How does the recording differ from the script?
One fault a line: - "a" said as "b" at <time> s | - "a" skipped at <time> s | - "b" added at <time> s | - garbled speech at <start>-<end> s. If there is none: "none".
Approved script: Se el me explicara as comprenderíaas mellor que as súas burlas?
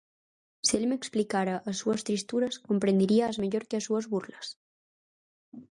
- "súas tristuras" added at 1.8 s